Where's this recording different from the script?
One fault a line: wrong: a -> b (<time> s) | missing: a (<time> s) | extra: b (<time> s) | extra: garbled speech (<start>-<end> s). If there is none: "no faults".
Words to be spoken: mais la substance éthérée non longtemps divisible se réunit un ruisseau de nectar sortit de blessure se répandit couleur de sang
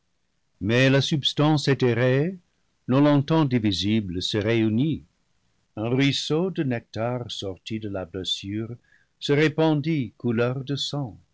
extra: la (7.9 s)